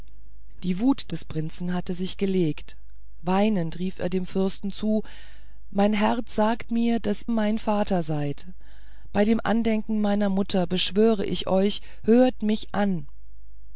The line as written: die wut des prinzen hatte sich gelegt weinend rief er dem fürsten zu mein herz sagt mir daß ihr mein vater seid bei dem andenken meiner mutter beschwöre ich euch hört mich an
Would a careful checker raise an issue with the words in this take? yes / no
yes